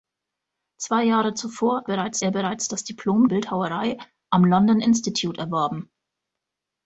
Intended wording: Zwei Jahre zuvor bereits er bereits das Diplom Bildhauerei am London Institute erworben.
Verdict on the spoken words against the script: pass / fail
pass